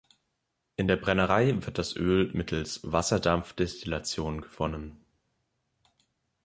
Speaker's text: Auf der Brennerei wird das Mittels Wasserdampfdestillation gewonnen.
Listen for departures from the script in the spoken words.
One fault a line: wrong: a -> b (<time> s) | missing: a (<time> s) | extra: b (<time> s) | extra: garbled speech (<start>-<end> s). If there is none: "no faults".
wrong: Auf -> In (0.8 s)
extra: Öl (1.9 s)